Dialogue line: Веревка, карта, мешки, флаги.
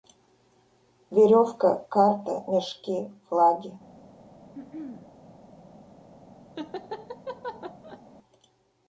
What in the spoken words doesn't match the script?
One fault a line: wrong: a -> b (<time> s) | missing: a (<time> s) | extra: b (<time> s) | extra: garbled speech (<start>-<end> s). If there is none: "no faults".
no faults